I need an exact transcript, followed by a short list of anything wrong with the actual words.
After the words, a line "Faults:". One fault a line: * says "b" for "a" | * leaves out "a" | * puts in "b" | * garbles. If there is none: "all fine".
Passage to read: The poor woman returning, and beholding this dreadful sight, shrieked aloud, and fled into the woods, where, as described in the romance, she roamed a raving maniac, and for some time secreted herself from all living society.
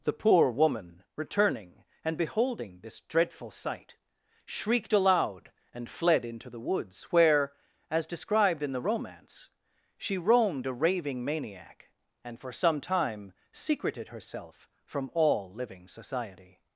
The poor woman returning, and beholding this dreadful sight, shrieked aloud, and fled into the woods, where, as described in the romance, she roamed a raving maniac, and for some time secreted herself from all living society.
Faults:
all fine